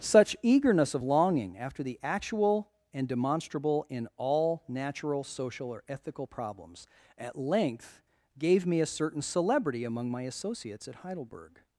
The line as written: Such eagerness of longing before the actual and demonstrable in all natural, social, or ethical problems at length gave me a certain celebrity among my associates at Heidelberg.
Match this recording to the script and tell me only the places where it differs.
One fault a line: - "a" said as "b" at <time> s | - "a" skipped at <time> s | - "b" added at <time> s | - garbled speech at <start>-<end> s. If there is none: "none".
- "before" said as "after" at 1.6 s